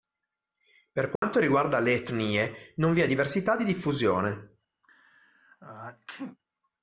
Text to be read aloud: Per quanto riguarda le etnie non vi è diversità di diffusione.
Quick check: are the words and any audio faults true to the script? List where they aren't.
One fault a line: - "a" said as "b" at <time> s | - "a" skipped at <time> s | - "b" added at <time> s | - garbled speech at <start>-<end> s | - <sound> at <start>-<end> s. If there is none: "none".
- dropout at 1.2-1.2 s
- sneeze at 4.8-6.4 s